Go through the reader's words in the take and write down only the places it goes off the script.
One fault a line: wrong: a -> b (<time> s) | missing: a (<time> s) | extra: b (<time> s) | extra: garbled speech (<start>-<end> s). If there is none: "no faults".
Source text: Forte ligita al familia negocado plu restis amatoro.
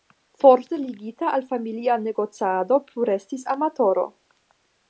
no faults